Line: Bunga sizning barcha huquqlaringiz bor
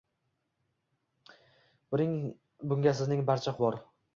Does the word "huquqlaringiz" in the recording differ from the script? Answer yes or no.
yes